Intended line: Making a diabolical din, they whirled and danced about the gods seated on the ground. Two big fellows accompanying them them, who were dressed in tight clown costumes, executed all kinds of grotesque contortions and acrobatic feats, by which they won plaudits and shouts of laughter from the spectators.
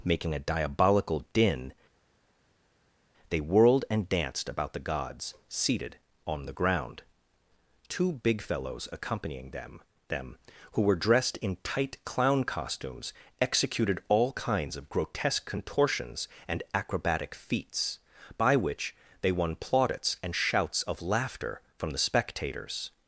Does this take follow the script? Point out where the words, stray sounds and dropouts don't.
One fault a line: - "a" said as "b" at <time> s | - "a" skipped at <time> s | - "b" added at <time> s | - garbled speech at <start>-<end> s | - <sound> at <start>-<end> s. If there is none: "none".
none